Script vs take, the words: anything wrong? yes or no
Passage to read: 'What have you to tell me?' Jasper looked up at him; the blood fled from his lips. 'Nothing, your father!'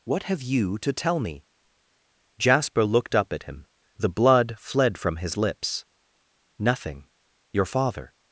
no